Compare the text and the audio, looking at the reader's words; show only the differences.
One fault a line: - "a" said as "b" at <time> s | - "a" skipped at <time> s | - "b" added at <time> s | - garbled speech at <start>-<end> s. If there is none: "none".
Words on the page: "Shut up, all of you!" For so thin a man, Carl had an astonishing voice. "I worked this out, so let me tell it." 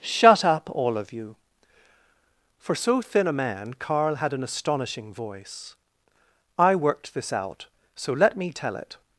none